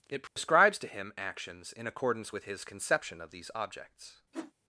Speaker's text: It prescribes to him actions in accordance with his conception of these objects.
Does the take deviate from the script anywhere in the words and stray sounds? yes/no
yes